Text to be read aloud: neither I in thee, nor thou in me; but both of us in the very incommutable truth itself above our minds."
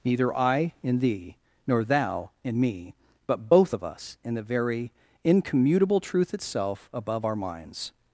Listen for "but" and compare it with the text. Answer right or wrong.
right